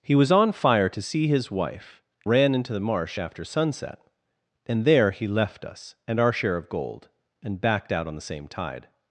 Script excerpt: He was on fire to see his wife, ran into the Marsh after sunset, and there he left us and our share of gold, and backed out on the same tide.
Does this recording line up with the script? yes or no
yes